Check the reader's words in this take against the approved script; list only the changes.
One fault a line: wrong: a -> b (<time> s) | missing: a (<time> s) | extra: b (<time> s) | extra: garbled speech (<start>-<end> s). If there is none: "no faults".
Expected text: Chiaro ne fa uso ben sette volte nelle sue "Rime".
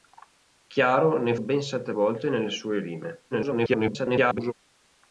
missing: fa uso (1.4 s)
extra: garbled speech (3.3-4.5 s)